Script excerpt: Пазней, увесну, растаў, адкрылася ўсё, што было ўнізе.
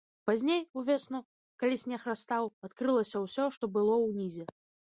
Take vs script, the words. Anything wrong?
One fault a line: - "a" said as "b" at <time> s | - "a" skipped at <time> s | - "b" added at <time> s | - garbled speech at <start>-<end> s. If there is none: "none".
- "калі снег" added at 1.6 s